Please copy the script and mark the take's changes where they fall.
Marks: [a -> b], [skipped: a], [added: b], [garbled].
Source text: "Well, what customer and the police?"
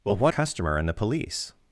"Well, what customer and the police?"